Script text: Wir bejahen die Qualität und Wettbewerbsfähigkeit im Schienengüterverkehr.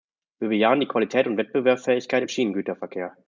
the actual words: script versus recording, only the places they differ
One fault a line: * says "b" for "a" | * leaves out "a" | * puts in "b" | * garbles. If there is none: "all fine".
all fine